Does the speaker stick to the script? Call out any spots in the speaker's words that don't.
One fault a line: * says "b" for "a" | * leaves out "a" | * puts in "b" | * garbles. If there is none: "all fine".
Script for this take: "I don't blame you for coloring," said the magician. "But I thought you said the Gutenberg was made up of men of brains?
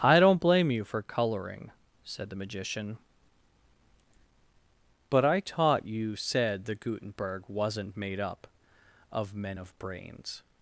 * says "taught" for "thought"
* says "wasn't" for "was"